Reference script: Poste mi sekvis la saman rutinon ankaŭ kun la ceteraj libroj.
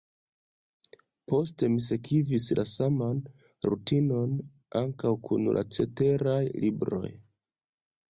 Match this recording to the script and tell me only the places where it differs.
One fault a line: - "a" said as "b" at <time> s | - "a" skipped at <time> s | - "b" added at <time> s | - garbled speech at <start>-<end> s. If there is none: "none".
none